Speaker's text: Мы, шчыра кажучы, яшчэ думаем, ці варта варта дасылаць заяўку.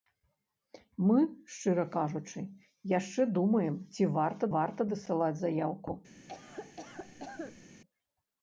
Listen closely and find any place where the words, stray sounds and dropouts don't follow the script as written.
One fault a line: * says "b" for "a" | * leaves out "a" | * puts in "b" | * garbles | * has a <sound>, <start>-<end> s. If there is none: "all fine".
* has a cough, 6.3-7.6 s